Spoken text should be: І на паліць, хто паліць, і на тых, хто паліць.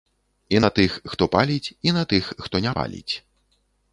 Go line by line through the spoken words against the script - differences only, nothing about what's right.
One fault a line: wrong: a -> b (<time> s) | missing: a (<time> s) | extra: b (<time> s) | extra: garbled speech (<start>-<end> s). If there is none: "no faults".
wrong: паліць -> тых (0.8 s)
extra: не (2.7 s)